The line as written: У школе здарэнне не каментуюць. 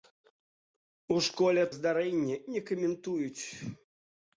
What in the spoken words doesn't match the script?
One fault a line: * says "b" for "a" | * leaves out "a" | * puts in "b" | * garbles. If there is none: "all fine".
all fine